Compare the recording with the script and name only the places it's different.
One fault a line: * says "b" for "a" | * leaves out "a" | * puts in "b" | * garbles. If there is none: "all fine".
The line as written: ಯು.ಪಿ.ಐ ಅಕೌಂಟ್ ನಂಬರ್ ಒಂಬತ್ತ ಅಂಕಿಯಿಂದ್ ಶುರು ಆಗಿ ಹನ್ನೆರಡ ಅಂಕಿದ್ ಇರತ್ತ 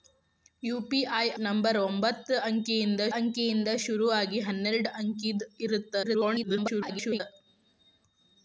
* leaves out "ಅಕೌಂಟ್"
* puts in "ಅಂಕಿಯಿಂದ್"
* garbles